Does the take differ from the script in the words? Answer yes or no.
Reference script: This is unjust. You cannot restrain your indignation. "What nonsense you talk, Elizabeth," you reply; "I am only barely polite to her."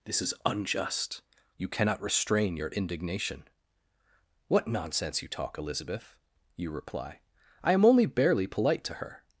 no